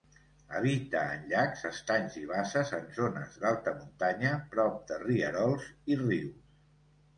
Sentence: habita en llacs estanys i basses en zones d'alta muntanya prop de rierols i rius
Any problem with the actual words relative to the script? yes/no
no